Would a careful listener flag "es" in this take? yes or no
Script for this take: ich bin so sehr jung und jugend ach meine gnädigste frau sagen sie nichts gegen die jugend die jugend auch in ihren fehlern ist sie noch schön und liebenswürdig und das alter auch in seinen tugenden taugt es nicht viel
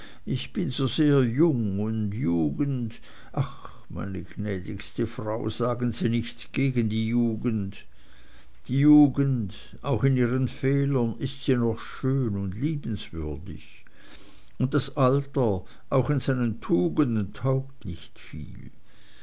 yes